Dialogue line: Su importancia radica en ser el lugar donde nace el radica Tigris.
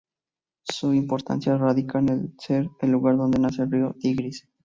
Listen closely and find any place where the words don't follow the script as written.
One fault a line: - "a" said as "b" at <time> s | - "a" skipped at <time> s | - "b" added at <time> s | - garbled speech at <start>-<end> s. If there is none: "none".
- "radica" said as "río" at 3.7 s